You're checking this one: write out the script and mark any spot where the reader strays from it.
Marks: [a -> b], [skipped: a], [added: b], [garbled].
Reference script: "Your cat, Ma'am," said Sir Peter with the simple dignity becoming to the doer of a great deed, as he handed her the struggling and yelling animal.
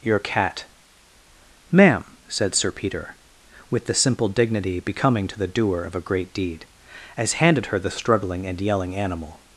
"Your cat, Ma'am," said Sir Peter with the simple dignity becoming to the doer of a great deed, as [skipped: he] handed her the struggling and yelling animal.